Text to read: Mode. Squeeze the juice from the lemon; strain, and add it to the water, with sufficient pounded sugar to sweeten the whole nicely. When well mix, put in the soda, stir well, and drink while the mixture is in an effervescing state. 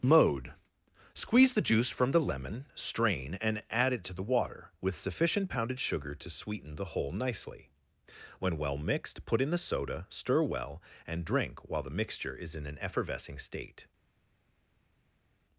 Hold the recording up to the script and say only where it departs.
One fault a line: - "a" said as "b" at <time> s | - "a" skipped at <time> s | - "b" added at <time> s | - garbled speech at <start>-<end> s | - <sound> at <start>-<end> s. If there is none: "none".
- "mix" said as "mixed" at 8.8 s